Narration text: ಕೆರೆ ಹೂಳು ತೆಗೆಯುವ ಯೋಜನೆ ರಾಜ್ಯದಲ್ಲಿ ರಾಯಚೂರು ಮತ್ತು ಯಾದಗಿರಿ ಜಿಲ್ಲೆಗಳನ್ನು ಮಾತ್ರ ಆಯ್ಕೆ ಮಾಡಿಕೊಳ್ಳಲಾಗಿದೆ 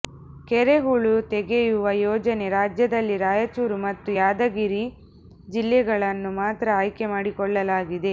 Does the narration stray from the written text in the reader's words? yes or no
no